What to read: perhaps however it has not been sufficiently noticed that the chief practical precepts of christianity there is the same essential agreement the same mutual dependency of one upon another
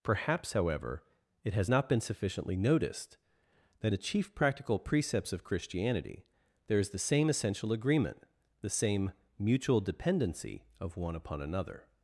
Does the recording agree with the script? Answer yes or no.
yes